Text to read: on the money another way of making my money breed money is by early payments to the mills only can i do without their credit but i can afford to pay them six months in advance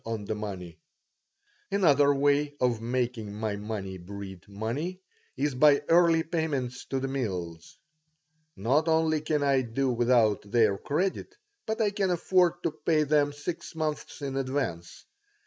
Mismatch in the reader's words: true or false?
true